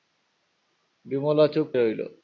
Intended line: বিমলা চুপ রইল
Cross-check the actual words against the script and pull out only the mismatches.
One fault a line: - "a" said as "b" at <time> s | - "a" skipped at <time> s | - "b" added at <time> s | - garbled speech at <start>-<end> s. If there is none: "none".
none